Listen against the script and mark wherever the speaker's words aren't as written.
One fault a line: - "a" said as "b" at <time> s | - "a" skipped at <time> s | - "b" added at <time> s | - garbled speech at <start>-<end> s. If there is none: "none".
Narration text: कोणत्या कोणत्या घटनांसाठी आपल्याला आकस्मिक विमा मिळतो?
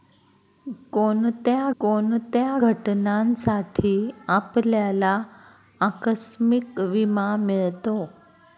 none